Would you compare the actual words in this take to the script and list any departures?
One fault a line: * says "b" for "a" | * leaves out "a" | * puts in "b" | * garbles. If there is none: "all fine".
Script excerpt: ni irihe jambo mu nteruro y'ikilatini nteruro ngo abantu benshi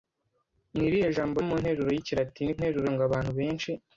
all fine